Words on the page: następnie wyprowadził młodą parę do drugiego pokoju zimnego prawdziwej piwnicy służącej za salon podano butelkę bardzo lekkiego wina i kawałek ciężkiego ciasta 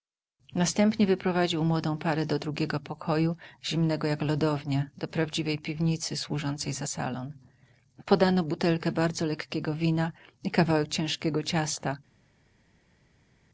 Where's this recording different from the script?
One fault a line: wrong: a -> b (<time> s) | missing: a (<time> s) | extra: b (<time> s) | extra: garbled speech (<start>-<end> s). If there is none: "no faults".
extra: jak lodownia do (4.1 s)